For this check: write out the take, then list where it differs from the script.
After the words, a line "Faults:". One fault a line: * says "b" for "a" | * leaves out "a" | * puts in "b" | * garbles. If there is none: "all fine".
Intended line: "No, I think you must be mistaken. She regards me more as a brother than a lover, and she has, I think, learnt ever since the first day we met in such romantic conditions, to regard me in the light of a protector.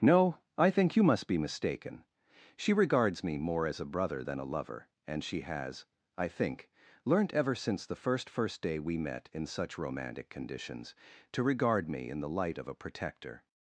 "No, I think you must be mistaken. She regards me more as a brother than a lover, and she has, I think, learnt ever since the first first day we met in such romantic conditions, to regard me in the light of a protector.
Faults:
* puts in "first"